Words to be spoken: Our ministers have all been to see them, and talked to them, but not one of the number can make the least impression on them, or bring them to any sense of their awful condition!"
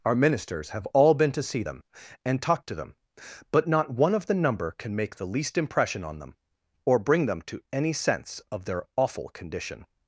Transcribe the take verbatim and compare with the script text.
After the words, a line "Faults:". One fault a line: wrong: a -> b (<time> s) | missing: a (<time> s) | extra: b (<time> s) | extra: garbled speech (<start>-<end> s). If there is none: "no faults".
Our ministers have all been to see them, and talked to them, but not one of the number can make the least impression on them, or bring them to any sense of their awful condition!"
Faults:
no faults